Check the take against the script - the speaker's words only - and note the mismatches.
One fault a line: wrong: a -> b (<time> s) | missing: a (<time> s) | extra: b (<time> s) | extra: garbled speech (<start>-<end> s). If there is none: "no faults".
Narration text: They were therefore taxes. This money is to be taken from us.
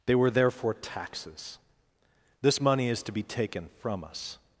no faults